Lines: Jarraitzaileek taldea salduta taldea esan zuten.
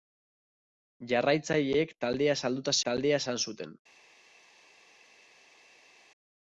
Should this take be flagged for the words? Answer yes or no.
no